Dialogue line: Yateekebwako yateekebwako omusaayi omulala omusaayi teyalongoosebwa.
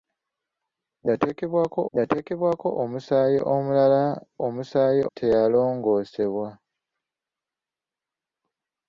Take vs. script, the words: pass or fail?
pass